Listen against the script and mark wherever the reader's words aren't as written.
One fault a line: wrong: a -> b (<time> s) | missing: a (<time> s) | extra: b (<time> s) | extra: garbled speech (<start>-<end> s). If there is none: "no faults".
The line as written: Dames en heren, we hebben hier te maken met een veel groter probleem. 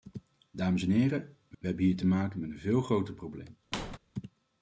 extra: we (1.6 s)